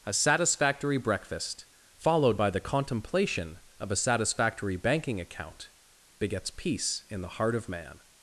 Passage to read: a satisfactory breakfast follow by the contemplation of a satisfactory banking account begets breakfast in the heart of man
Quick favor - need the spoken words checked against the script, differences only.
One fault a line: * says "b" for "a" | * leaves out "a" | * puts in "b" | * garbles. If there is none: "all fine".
* says "followed" for "follow"
* says "peace" for "breakfast"